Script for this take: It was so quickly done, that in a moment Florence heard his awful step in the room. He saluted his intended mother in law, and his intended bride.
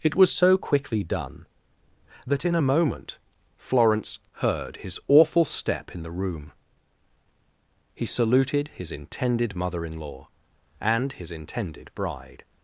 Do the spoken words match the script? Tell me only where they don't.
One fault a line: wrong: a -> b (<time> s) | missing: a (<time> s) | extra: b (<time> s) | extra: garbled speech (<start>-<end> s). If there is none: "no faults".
no faults